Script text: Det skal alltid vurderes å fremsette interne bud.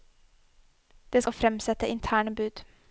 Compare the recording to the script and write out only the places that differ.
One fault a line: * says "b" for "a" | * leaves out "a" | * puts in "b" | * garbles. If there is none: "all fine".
* leaves out "skal alltid vurderes"